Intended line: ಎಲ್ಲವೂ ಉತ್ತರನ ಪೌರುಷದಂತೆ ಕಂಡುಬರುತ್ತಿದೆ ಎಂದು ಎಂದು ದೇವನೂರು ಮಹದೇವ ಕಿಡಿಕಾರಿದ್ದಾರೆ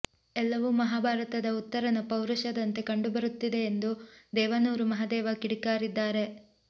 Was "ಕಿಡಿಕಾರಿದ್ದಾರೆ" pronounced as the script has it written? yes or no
yes